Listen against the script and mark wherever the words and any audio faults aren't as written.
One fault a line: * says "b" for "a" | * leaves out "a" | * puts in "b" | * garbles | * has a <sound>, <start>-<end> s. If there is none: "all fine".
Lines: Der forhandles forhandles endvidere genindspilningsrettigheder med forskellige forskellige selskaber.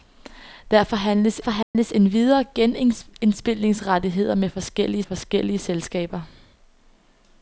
* has a dropout, 1.6-1.7 s